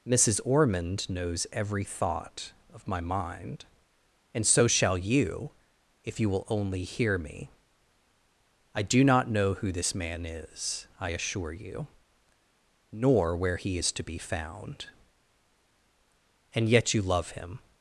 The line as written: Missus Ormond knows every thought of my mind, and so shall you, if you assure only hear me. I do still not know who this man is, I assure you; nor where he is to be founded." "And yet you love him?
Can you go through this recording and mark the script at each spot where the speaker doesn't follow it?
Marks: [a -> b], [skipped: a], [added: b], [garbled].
Missus Ormond knows every thought of my mind, and so shall you, if you [assure -> will] only hear me. I do [skipped: still] not know who this man is, I assure you; nor where he is to be [founded." -> found] "And yet you love him?